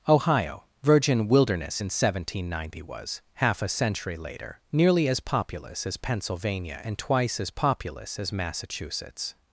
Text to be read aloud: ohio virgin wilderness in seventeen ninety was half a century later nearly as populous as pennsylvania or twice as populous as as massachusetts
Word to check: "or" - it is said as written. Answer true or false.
false